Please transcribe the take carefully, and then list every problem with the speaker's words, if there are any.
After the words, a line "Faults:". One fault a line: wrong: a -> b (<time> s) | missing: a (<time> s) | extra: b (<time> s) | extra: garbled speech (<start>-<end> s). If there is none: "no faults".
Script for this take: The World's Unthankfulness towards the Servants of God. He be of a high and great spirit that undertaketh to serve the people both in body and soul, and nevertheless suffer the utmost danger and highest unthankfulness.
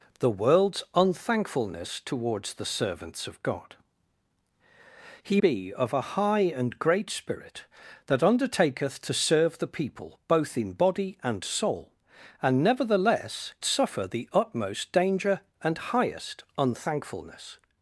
The World's Unthankfulness towards the Servants of God. He be of a high and great spirit that undertaketh to serve the people both in body and soul, and nevertheless suffer the utmost danger and highest unthankfulness.
Faults:
no faults